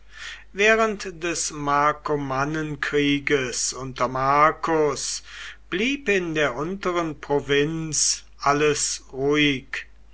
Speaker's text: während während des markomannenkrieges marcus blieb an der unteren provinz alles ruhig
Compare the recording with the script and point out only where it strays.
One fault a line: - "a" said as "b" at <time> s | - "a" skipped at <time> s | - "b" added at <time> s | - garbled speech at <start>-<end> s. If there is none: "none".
- "während" skipped at 1.2 s
- "unter" added at 3.7 s
- "an" said as "in" at 6.1 s